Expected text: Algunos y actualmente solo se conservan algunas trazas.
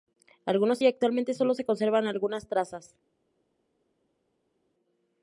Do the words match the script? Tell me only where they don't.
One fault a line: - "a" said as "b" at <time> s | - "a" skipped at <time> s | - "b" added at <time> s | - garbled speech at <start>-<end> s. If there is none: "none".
none